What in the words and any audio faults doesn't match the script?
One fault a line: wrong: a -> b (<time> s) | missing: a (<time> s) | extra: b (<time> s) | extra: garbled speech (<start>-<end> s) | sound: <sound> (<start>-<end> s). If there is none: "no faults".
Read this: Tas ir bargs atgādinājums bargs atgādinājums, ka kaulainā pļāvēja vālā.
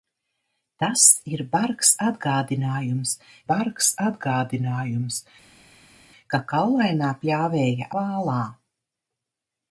no faults